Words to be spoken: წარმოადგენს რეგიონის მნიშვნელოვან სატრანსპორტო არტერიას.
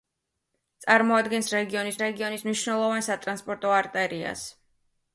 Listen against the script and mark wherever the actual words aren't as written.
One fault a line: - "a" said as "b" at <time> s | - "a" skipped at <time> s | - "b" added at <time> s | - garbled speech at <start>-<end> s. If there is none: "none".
- "რეგიონის" added at 2.0 s